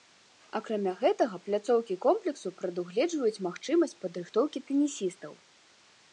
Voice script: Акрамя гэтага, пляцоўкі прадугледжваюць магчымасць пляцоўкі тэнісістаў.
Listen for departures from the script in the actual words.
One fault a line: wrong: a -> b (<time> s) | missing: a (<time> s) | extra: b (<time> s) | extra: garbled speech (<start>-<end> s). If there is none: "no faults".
extra: комплексу (2.1 s)
wrong: пляцоўкі -> падрыхтоўкі (4.1 s)